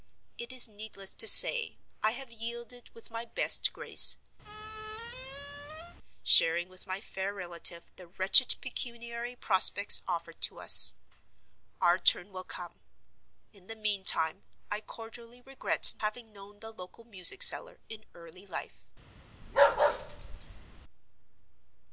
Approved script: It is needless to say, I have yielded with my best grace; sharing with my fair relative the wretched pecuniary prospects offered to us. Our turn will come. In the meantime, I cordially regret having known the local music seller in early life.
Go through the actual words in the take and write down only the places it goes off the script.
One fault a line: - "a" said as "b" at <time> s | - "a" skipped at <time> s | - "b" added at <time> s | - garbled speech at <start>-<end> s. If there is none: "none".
none